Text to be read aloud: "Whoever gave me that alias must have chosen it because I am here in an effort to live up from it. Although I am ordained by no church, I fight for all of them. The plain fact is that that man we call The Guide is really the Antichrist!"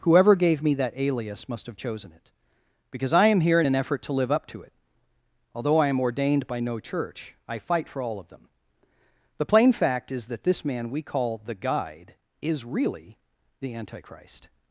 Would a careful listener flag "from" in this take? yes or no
yes